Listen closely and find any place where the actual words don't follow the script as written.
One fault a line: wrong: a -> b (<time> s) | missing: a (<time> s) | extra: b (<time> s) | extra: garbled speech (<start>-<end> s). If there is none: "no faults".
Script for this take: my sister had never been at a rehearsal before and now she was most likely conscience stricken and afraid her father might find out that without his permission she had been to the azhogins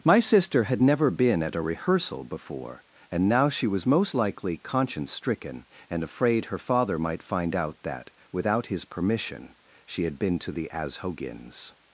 no faults